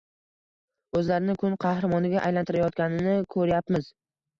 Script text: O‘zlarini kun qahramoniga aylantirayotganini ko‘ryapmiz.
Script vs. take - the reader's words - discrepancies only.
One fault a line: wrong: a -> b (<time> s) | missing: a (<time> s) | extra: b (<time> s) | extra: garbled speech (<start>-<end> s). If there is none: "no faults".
no faults